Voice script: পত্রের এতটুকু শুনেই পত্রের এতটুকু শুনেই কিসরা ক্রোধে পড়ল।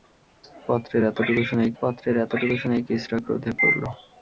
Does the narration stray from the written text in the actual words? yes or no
no